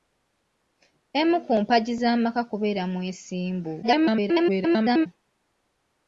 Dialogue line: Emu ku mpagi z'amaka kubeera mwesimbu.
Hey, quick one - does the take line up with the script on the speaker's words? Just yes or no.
no